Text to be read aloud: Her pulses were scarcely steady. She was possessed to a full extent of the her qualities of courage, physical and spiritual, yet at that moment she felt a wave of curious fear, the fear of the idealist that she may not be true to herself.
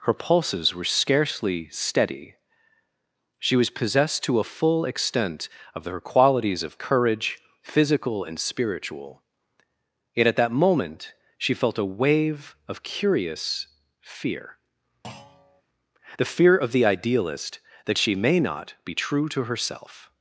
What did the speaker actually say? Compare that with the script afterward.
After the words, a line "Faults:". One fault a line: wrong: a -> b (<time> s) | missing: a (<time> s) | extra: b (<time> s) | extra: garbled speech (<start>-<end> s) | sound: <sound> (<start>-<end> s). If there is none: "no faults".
Her pulses were scarcely steady. She was possessed to a full extent of her qualities of courage, physical and spiritual, yet at that moment she felt a wave of curious fear, the fear of the idealist that she may not be true to herself.
Faults:
missing: the (5.8 s)
sound: thud (15.0-15.6 s)